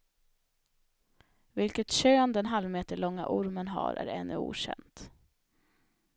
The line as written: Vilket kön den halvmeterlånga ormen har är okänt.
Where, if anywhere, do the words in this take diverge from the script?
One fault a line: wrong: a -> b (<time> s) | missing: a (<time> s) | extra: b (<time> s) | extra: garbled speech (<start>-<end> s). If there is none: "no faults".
extra: ännu (4.1 s)